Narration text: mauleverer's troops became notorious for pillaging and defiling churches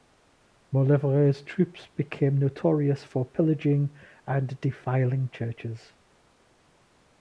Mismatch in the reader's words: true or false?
false